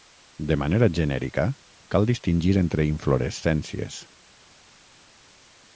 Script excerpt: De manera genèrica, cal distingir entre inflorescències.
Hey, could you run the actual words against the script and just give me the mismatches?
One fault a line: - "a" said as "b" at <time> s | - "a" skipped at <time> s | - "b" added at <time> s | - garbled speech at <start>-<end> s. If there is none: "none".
none